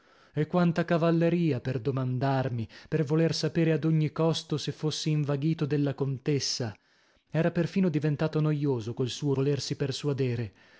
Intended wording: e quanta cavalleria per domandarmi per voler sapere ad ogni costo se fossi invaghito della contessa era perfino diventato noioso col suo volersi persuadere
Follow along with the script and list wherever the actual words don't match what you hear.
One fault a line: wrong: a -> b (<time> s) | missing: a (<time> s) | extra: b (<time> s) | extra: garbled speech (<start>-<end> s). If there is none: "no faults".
no faults